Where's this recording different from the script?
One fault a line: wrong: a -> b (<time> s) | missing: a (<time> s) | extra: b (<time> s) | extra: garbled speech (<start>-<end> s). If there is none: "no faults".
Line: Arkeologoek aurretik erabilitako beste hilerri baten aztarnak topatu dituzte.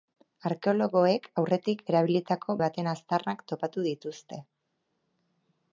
missing: beste hilerri (2.6 s)